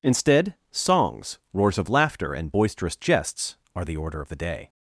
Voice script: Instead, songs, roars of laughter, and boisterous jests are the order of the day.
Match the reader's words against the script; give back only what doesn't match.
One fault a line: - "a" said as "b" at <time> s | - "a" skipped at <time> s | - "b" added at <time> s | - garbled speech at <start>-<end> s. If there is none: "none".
none